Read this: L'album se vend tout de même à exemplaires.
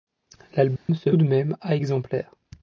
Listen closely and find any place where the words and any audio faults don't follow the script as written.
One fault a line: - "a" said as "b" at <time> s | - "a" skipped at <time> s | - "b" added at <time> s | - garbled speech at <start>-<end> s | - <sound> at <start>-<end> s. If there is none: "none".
- dropout at 0.8-0.9 s
- "vend tout" skipped at 1.1 s